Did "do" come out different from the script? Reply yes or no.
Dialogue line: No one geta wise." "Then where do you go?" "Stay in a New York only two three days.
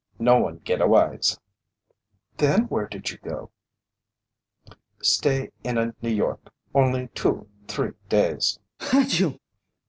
yes